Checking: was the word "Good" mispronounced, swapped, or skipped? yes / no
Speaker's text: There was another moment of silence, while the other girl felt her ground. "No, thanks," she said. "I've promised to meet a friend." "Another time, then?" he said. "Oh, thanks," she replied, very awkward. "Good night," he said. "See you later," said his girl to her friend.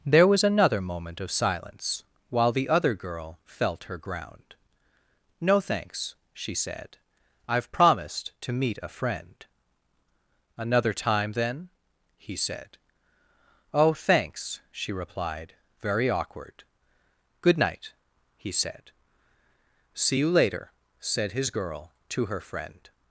no